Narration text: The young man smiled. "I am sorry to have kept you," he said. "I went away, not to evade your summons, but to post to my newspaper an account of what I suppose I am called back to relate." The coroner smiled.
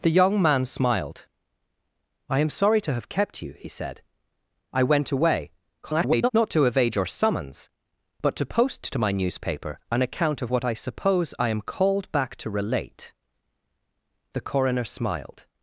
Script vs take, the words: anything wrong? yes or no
yes